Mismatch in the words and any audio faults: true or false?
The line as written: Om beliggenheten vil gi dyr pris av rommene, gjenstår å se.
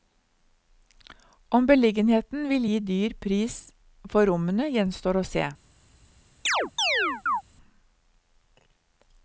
true